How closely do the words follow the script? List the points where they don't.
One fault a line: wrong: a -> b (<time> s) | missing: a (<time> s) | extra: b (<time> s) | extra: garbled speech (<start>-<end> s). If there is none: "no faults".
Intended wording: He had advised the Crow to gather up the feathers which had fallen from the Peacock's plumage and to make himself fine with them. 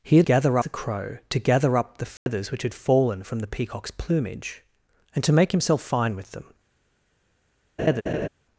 wrong: advised -> gather (0.2 s)